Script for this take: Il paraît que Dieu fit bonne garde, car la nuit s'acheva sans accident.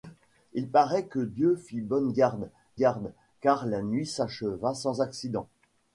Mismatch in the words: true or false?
true